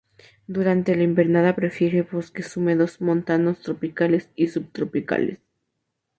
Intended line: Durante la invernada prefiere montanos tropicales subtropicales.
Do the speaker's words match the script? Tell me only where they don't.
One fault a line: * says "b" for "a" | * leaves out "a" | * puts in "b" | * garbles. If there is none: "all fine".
* puts in "bosques húmedos"
* puts in "y"